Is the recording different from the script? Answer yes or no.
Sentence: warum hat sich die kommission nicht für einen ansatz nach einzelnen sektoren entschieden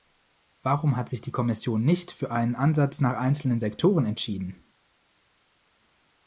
no